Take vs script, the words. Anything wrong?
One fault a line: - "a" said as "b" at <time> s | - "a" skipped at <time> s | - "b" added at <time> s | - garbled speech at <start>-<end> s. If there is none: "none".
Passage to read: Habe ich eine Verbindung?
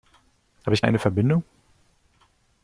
none